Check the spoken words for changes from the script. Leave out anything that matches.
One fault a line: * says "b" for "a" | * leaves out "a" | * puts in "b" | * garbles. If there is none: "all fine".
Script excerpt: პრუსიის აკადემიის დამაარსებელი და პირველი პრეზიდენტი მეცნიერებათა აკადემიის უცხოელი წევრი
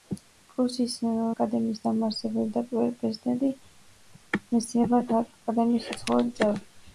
all fine